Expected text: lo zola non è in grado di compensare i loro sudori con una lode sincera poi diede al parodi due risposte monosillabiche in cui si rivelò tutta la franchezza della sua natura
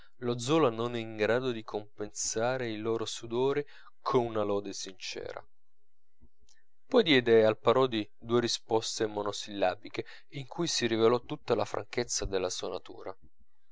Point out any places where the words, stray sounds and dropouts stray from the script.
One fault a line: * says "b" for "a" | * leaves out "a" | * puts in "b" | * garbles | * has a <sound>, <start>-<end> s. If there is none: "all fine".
all fine